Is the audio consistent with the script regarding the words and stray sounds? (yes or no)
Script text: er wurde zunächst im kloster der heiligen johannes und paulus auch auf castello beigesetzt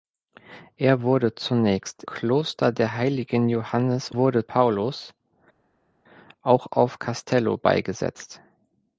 no